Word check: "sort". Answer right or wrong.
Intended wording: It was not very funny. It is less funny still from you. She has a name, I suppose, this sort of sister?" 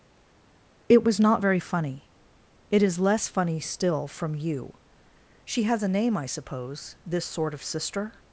right